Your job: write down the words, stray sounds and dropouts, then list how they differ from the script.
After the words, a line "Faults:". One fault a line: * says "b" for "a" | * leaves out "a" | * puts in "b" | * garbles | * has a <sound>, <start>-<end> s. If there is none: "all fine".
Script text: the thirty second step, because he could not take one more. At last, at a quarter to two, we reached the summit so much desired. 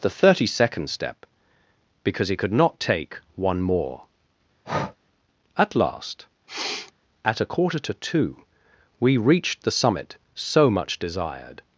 the thirty second step, because he could not take one more. At last, at a quarter to two, we reached the summit so much desired.
Faults:
* has a breath, 4.6-5.0 s
* has a sniff, 6.5-6.9 s